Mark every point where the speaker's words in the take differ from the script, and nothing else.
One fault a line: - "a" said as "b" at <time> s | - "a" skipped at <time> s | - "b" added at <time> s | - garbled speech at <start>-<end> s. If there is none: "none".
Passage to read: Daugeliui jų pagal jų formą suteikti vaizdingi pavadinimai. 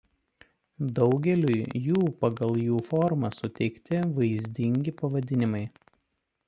none